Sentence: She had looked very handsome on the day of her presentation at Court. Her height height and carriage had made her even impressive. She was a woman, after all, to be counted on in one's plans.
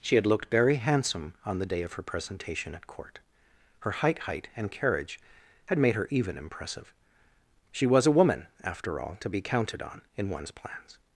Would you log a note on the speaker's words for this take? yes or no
no